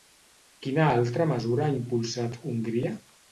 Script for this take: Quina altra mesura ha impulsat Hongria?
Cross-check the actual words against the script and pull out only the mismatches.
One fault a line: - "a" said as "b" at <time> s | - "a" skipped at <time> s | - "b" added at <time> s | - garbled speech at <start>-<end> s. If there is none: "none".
none